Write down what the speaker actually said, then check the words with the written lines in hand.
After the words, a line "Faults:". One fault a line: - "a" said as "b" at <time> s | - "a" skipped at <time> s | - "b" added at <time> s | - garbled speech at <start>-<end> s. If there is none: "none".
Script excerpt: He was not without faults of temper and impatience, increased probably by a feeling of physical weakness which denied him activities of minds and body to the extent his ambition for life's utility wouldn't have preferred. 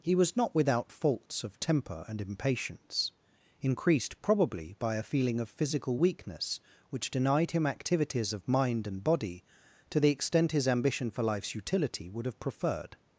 He was not without faults of temper and impatience, increased probably by a feeling of physical weakness which denied him activities of mind and body to the extent his ambition for life's utility would have preferred.
Faults:
- "minds" said as "mind" at 8.5 s
- "wouldn't" said as "would" at 12.1 s